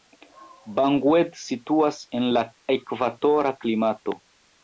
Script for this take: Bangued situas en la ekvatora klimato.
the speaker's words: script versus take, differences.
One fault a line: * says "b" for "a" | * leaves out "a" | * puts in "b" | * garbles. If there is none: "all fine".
all fine